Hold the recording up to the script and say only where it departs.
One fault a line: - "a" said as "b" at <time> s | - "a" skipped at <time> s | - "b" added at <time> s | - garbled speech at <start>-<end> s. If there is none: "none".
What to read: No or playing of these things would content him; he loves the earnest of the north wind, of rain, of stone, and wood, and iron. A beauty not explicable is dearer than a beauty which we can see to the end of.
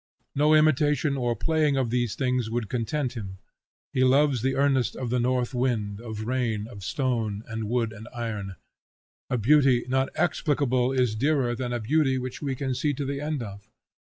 - "imitation" added at 0.6 s